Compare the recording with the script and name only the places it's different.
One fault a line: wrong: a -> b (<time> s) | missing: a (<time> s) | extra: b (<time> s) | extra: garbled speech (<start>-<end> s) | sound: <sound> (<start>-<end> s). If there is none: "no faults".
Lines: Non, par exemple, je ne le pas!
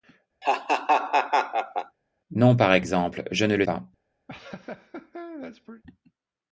sound: laugh (0.4-2.0 s)
sound: laugh (4.3-5.8 s)